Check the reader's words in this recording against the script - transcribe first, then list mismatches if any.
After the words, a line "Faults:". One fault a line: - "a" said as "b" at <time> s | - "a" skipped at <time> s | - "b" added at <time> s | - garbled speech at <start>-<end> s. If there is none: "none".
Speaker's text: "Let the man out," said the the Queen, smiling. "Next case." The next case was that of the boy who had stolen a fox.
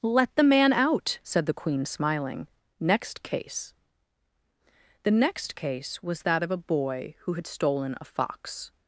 "Let the man out," said the Queen, smiling. "Next case." The next case was that of a boy who had stolen a fox.
Faults:
- "the" skipped at 1.6 s
- "the" said as "a" at 6.5 s